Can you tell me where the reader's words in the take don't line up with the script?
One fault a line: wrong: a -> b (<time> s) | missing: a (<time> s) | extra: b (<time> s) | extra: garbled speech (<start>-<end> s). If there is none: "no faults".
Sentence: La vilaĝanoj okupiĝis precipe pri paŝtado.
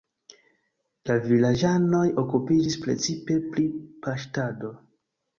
no faults